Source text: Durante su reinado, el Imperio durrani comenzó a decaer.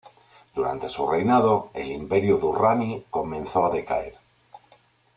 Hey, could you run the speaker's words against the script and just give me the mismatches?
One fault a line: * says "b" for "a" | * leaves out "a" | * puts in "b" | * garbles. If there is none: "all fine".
all fine